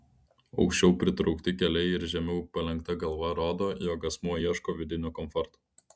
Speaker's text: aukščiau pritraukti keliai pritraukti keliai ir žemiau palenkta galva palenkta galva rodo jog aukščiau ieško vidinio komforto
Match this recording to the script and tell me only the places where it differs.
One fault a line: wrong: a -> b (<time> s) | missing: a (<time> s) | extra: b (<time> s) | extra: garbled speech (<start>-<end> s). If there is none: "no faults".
missing: pritraukti keliai (1.9 s)
missing: palenkta galva (3.3 s)
wrong: aukščiau -> asmuo (4.1 s)